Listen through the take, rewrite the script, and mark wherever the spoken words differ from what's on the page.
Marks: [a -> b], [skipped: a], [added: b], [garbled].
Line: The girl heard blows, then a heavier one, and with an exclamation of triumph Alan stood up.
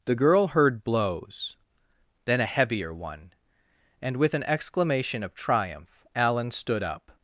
The girl heard blows, then a heavier one, and with an exclamation of triumph Alan stood up.